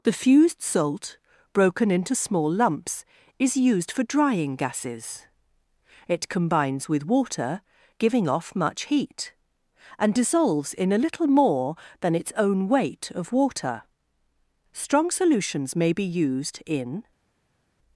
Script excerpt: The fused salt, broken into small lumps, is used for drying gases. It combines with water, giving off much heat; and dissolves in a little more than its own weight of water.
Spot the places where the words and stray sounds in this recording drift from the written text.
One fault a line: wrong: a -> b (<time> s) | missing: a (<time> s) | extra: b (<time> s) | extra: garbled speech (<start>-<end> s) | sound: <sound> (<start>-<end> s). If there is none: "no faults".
extra: Strong solutions may be used in (14.7 s)